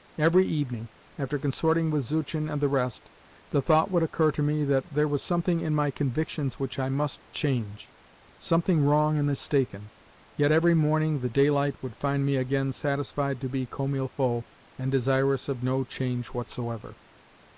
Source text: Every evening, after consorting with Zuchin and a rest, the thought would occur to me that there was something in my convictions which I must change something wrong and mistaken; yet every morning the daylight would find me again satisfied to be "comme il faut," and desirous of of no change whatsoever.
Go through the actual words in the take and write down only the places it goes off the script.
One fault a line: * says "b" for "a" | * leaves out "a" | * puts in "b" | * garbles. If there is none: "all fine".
* says "the" for "a"
* leaves out "of"